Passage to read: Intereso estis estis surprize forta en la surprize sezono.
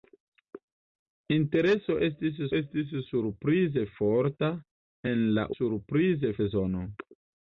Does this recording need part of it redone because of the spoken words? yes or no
no